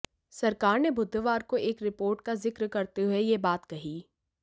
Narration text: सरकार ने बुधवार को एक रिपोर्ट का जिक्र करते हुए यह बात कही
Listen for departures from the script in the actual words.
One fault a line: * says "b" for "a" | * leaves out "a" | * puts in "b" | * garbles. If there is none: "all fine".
all fine